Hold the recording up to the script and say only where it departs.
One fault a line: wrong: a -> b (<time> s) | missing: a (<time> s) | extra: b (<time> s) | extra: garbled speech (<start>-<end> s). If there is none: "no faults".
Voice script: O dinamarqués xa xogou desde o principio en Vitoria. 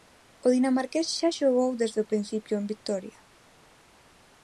no faults